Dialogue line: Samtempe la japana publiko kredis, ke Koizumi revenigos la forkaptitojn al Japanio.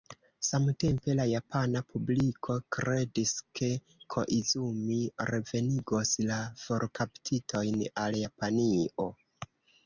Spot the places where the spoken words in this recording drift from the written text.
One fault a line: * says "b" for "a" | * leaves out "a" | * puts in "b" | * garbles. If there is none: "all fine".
all fine